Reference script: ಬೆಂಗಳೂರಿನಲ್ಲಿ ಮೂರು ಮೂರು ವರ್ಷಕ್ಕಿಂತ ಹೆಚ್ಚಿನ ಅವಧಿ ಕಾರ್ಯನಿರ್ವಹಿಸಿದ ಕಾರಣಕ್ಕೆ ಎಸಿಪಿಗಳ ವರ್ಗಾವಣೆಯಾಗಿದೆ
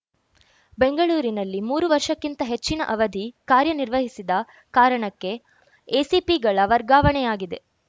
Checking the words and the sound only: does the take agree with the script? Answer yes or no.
no